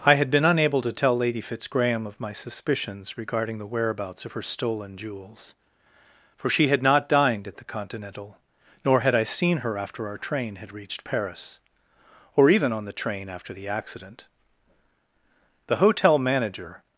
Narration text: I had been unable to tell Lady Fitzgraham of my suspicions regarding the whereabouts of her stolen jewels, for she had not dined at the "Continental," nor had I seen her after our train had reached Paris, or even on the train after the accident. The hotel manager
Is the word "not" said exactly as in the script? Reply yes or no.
yes